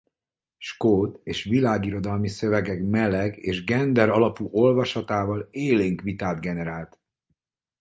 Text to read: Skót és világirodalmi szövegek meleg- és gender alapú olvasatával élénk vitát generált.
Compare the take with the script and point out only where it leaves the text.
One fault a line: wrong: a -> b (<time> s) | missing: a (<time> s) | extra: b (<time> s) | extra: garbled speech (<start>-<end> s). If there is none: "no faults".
no faults